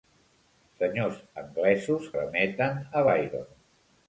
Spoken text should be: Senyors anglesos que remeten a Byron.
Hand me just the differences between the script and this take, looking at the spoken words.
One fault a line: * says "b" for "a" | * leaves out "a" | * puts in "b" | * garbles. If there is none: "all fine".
* leaves out "que"